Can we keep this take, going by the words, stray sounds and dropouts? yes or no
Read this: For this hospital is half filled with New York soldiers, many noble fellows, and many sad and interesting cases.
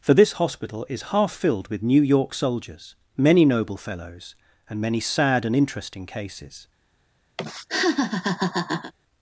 no